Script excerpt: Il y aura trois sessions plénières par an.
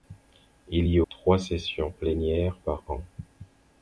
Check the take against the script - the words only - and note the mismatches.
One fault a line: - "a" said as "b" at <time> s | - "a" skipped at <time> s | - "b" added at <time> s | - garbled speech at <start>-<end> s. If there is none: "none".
- "aura" skipped at 1.0 s